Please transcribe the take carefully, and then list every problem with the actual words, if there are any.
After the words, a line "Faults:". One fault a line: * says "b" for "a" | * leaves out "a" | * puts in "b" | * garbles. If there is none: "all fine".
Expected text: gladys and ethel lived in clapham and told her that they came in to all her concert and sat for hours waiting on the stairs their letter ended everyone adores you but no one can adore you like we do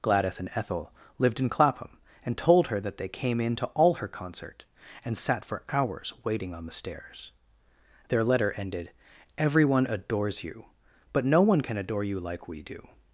gladys and ethel lived in clapham and told her that they came in to all her concert and sat for hours waiting on the stairs their letter ended everyone adores you but no one can adore you like we do
Faults:
all fine